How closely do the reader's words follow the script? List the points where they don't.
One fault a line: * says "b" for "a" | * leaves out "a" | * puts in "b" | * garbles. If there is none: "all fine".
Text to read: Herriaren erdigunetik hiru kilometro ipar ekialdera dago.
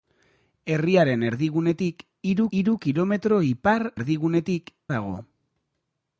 * puts in "hiru"
* says "erdigunetik" for "ekialdera"